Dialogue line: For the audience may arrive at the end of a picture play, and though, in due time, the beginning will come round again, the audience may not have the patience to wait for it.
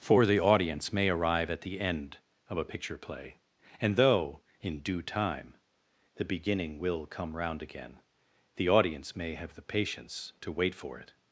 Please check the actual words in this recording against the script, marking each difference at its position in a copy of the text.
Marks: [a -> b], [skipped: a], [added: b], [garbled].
For the audience may arrive at the end of a picture play, and though, in due time, the beginning will come round again, the audience may [skipped: not] have the patience to wait for it.